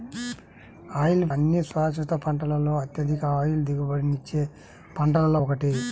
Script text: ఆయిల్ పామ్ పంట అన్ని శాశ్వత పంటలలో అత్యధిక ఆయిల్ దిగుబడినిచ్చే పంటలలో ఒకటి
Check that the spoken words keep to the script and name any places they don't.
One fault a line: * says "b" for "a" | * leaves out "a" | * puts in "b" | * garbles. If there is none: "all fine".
* leaves out "పామ్ పంట"